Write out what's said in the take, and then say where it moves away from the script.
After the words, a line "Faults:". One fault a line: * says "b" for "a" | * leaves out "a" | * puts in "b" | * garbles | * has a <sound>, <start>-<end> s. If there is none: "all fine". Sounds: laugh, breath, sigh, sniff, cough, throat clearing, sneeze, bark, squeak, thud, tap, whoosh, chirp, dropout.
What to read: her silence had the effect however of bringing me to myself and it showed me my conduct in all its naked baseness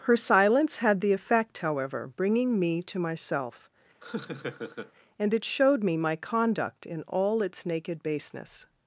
her silence had the effect however bringing me to myself and it showed me my conduct in all its naked baseness
Faults:
* leaves out "of"
* has a laugh, 4.0-4.9 s